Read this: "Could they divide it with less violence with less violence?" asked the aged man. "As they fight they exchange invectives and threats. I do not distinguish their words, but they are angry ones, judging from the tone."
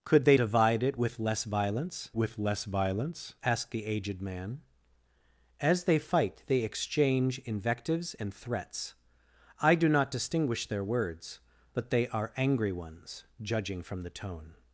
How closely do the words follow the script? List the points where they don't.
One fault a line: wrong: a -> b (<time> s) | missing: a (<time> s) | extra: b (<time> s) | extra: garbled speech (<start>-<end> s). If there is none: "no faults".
no faults